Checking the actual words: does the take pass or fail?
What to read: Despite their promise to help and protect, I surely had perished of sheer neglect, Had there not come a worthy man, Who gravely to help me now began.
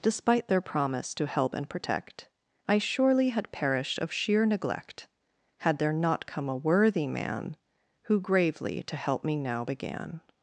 pass